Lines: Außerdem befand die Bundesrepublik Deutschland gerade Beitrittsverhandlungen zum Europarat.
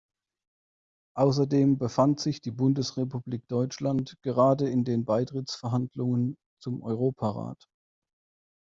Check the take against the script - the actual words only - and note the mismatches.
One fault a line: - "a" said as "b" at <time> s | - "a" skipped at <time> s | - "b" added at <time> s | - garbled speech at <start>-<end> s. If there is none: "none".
- "sich" added at 2.2 s
- "in den" added at 4.7 s